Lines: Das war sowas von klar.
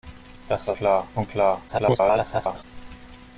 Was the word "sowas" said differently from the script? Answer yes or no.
yes